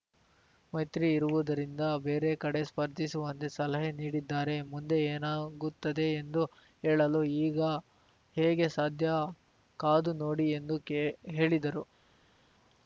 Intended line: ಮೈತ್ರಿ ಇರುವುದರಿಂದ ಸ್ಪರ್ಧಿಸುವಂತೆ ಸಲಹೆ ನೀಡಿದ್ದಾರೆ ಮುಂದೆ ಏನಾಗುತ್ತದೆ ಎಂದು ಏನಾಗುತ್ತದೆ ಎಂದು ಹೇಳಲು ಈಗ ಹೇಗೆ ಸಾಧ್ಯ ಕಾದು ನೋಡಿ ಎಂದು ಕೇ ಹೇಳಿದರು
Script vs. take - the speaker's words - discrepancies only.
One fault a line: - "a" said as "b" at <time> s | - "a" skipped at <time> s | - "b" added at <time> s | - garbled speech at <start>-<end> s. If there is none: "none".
- "ಬೇರೆ ಕಡೆ" added at 2.0 s
- "ಏನಾಗುತ್ತದೆ ಎಂದು" skipped at 6.4 s